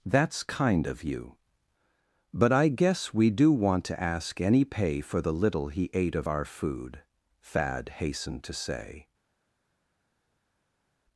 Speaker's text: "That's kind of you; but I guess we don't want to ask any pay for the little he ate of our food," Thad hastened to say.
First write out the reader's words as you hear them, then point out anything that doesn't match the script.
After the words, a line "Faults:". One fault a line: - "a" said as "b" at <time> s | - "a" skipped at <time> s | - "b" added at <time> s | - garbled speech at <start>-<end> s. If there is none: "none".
"That's kind of you; but I guess we do want to ask any pay for the little he ate of our food," Thad hastened to say.
Faults:
- "don't" said as "do" at 3.3 s